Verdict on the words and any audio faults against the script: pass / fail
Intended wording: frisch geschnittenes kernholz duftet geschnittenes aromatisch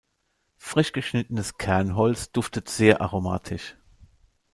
fail